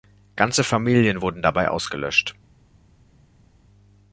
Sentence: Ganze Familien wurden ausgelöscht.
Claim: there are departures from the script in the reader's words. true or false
true